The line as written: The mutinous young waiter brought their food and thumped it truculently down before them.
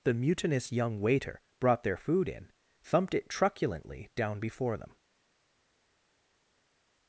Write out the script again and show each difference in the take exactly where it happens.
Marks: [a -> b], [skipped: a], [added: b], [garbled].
The mutinous young waiter brought their food [and -> in] thumped it truculently down before them.